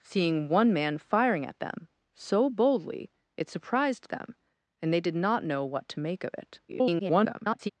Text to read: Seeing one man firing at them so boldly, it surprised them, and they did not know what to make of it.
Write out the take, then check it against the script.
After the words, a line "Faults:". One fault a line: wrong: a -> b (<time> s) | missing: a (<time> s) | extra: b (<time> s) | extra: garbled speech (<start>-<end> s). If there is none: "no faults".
Seeing one man firing at them so boldly, it surprised them, and they did not know what to make of it. [garbled]
Faults:
extra: garbled speech (6.7-7.7 s)